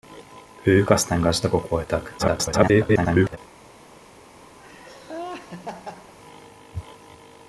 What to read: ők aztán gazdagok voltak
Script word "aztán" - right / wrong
right